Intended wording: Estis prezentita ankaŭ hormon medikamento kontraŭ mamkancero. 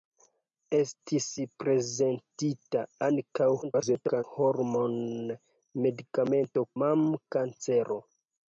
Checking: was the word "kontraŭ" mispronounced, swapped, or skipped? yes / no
yes